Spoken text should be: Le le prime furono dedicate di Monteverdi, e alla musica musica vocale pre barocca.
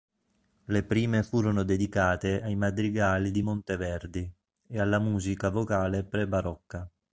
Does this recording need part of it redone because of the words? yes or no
yes